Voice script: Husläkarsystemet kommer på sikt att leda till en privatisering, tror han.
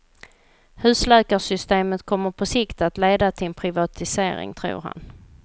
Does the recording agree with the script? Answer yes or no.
yes